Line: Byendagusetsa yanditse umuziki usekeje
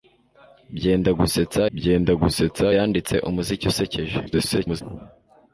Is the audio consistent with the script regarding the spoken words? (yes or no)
no